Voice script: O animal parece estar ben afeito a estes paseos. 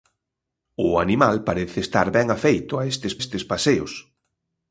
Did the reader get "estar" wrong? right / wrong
right